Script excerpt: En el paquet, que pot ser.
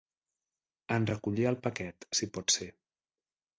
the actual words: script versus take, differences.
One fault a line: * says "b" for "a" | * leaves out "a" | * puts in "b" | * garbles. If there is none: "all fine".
* puts in "recollir"
* says "si" for "que"